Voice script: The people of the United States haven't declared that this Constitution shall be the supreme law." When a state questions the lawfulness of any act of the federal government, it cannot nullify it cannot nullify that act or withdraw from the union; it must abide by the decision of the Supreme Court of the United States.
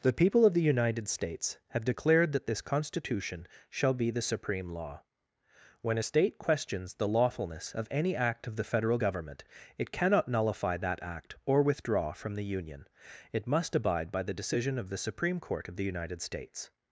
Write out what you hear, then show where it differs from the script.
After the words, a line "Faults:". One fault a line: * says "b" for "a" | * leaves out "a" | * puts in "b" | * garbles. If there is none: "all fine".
The people of the United States have declared that this Constitution shall be the supreme law." When a state questions the lawfulness of any act of the federal government, it cannot nullify that act or withdraw from the union; it must abide by the decision of the Supreme Court of the United States.
Faults:
* says "have" for "haven't"
* leaves out "it cannot nullify"